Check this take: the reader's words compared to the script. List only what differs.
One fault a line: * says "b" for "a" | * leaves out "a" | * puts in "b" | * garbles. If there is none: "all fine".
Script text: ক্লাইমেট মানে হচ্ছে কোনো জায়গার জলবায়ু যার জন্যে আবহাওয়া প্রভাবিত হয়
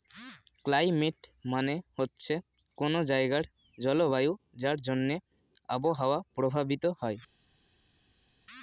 all fine